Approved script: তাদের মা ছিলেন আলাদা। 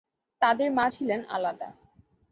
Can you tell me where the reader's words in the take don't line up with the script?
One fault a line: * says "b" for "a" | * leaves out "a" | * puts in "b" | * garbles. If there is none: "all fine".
all fine